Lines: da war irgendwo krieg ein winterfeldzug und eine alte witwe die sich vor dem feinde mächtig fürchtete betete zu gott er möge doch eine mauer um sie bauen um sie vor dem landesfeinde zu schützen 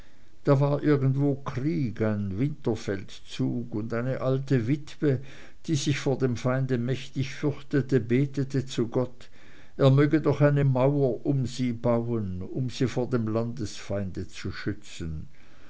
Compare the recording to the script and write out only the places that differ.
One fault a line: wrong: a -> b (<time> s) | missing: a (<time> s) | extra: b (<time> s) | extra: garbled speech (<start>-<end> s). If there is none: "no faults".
no faults